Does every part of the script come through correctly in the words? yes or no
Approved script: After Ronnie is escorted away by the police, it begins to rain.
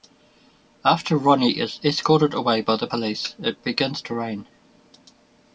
yes